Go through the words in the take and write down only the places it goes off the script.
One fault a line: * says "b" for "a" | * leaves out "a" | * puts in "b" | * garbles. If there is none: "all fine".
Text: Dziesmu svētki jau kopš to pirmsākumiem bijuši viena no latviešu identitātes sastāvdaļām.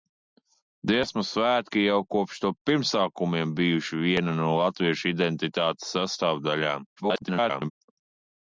* garbles